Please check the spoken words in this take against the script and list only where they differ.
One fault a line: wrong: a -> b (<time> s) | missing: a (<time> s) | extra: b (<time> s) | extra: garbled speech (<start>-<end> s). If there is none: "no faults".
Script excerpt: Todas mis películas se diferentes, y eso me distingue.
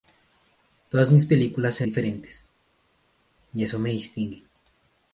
no faults